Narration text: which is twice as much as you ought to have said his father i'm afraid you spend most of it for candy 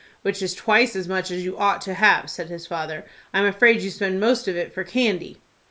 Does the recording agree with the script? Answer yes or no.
yes